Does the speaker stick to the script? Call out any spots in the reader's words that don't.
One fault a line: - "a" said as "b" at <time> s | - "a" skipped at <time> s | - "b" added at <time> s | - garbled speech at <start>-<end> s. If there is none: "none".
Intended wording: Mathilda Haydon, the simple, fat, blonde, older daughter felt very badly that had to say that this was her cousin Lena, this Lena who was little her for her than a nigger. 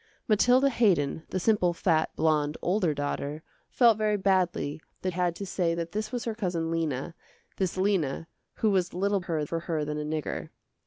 none